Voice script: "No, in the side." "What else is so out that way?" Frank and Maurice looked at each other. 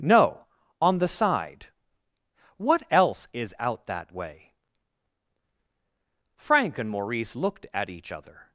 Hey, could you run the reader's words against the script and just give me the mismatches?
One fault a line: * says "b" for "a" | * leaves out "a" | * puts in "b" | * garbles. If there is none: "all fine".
* says "on" for "in"
* leaves out "so"